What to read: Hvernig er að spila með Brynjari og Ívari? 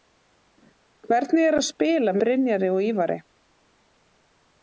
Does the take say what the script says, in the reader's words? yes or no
no